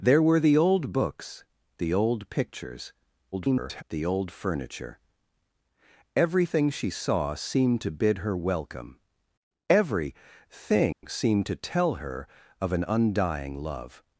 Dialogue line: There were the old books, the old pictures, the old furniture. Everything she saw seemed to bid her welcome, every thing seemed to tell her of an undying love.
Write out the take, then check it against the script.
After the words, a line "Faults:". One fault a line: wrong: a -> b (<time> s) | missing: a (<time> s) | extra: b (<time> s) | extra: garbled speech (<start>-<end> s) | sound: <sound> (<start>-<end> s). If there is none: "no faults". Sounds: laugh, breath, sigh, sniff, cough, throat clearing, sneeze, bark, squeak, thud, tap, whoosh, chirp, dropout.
There were the old books, the old pictures, [garbled] the old furniture. Everything she saw seemed to bid her welcome, every thing seemed to tell her of an undying love.
Faults:
extra: garbled speech (3.3-3.8 s)
sound: dropout (10.9-11.0 s)